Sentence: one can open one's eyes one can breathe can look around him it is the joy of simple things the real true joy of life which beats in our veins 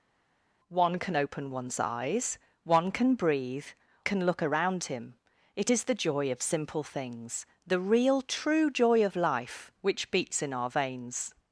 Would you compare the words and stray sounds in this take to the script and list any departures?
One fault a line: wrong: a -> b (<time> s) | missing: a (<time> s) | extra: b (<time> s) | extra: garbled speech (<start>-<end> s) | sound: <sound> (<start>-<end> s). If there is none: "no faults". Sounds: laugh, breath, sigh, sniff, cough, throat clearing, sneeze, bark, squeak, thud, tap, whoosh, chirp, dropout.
no faults